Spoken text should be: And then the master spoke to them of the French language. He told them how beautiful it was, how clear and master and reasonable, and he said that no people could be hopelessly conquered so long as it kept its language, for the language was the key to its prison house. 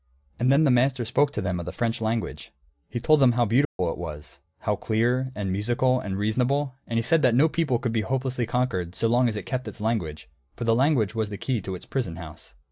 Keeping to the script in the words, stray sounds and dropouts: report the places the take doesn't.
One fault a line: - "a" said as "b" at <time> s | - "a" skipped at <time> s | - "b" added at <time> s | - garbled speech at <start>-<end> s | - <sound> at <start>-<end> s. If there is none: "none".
- dropout at 3.6-3.8 s
- "master" said as "musical" at 5.5 s